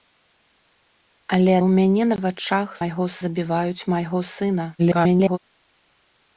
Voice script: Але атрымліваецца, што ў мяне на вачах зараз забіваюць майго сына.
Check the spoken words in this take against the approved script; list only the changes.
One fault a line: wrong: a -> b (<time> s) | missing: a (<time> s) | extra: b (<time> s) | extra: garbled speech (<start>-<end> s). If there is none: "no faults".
missing: атрымліваецца што (1.5 s)
wrong: зараз -> майго (2.8 s)
extra: garbled speech (4.8-5.4 s)